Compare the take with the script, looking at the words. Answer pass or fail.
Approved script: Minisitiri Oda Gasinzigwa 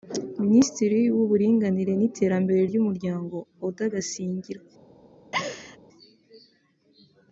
fail